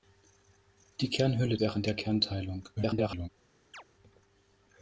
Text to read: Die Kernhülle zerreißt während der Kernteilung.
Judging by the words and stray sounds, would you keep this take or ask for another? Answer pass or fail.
fail